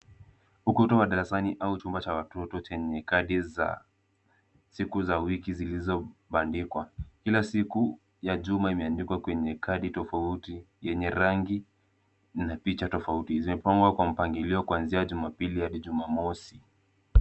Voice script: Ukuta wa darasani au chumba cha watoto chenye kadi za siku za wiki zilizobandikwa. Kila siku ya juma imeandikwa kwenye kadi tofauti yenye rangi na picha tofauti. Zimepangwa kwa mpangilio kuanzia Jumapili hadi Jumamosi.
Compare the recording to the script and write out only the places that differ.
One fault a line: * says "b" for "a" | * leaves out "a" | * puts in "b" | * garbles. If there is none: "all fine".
all fine